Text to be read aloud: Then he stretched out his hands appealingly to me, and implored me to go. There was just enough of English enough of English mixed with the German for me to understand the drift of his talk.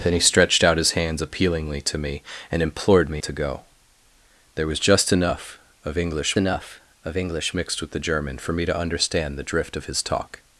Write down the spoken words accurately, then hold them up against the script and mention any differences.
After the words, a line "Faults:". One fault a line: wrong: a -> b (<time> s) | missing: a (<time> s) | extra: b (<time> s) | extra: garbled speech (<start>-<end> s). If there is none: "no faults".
Then he stretched out his hands appealingly to me, and implored me to go. There was just enough of English enough of English mixed with the German for me to understand the drift of his talk.
Faults:
no faults